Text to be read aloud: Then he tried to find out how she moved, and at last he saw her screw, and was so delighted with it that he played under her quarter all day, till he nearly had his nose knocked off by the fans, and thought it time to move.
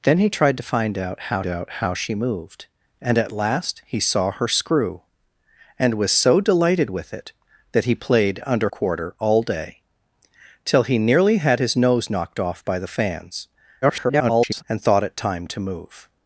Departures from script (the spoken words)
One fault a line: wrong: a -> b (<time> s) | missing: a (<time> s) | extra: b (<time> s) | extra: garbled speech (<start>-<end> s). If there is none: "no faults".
extra: out how (1.5 s)
missing: her (8.7 s)
extra: garbled speech (13.8-14.6 s)